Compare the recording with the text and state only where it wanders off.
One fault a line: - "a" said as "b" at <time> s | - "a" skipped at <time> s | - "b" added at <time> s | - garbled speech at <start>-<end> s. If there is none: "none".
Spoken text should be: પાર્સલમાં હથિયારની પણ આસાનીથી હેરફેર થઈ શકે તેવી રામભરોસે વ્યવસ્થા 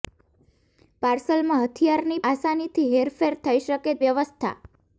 - "પણ" skipped at 2.2 s
- "તેવી રામભરોસે" skipped at 4.0 s